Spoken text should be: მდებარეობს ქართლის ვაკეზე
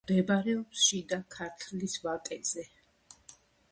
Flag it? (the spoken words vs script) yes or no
yes